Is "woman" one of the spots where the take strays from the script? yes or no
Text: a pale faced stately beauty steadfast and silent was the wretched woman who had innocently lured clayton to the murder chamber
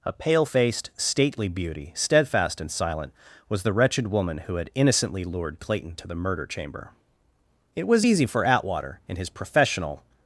no